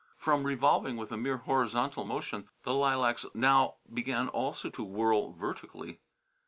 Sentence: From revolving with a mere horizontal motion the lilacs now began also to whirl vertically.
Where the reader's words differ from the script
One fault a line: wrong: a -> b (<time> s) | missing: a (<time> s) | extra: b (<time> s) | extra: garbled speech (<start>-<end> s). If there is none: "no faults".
no faults